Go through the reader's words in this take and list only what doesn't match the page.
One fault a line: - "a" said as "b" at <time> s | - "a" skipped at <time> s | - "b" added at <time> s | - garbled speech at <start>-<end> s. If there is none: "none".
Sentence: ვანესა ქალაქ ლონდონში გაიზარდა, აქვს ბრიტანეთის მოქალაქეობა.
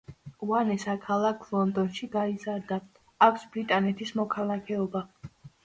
none